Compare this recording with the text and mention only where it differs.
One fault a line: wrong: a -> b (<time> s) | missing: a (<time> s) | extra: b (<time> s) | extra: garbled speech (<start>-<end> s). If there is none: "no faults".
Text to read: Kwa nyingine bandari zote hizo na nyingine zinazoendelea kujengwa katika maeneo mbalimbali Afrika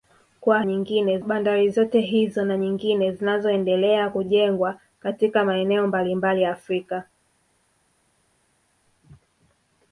no faults